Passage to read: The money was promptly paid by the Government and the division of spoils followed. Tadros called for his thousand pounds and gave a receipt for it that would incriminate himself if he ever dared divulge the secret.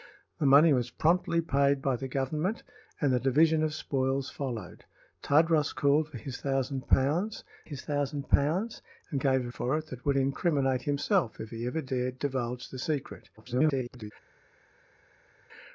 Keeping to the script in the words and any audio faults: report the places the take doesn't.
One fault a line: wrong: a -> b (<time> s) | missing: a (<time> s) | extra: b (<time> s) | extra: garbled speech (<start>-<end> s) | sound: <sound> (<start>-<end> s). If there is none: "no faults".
extra: his thousand pounds (7.6 s)
missing: receipt (9.5 s)
extra: garbled speech (13.4-14.1 s)